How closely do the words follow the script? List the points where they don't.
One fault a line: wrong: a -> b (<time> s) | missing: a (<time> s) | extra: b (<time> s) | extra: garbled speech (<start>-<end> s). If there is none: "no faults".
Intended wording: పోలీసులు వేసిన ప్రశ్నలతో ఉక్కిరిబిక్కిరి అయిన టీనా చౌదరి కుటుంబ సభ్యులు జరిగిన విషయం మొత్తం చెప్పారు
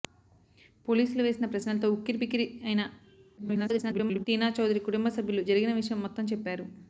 extra: garbled speech (3.4-4.3 s)